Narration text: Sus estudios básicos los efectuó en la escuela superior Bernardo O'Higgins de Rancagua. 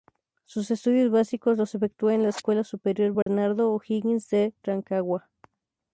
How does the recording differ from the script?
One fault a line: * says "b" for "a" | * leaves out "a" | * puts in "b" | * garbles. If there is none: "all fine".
all fine